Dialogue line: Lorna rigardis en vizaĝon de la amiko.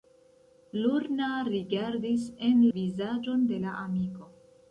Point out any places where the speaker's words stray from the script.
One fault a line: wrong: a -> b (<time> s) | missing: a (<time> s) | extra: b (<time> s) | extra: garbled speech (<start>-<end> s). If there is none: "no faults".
no faults